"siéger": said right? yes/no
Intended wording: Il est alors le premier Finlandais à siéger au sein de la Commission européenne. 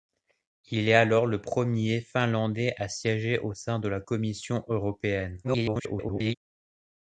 yes